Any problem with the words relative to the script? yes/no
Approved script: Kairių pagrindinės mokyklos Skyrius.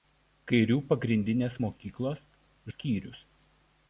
no